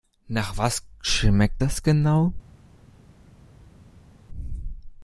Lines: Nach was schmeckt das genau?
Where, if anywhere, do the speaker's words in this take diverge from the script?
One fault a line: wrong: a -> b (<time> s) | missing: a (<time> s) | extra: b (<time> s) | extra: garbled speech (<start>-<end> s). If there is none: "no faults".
no faults